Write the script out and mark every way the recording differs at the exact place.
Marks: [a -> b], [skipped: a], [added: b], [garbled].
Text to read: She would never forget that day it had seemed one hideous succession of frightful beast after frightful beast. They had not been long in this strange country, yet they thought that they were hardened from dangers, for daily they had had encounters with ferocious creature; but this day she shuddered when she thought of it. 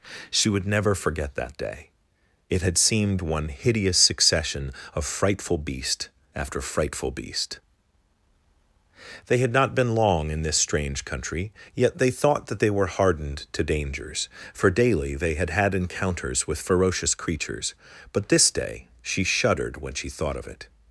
She would never forget that day it had seemed one hideous succession of frightful beast after frightful beast. They had not been long in this strange country, yet they thought that they were hardened [from -> to] dangers, for daily they had had encounters with ferocious [creature; -> creatures] but this day she shuddered when she thought of it.